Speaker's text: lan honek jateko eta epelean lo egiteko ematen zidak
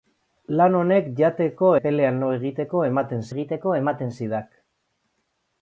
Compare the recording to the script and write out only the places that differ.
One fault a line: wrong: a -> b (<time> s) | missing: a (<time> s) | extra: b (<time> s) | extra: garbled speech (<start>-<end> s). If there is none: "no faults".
missing: eta (1.7 s)
extra: egiteko ematen (3.3 s)